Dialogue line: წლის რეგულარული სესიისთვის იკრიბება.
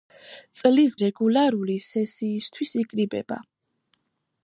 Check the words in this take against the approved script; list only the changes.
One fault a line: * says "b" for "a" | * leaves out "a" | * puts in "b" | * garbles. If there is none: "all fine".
all fine